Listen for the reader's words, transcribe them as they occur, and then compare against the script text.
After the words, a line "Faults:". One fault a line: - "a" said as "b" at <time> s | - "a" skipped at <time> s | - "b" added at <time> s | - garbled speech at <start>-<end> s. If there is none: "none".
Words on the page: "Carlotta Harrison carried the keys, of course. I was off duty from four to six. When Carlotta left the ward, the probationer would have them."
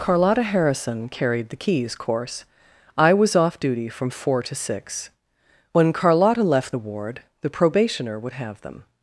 "Carlotta Harrison carried the keys, course. I was off duty from four to six. When Carlotta left the ward, the probationer would have them."
Faults:
- "of" skipped at 1.9 s